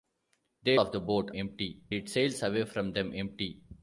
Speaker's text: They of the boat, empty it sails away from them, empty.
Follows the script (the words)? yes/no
yes